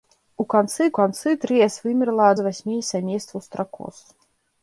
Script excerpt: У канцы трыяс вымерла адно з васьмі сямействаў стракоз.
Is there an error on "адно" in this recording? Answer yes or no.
yes